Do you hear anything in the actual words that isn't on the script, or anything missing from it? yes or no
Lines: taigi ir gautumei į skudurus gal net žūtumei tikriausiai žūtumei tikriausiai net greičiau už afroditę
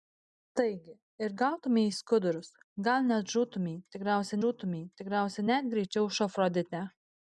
no